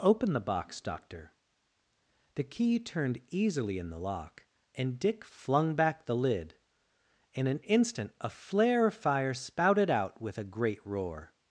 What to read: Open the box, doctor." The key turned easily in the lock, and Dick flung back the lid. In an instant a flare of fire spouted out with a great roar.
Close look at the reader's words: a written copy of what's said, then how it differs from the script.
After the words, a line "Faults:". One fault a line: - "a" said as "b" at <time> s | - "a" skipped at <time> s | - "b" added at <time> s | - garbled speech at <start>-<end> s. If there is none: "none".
Open the box, doctor." The key turned easily in the lock, and Dick flung back the lid. In an instant a flare of fire spouted out with a great roar.
Faults:
none